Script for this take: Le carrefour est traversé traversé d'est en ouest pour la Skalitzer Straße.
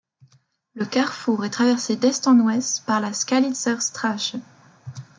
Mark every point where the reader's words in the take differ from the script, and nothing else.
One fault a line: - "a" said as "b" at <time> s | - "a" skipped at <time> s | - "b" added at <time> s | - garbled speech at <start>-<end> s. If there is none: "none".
- "traversé" skipped at 1.9 s
- "pour" said as "par" at 2.9 s